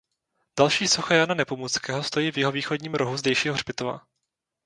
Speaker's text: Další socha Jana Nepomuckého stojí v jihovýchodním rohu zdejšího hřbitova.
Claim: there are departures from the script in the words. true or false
false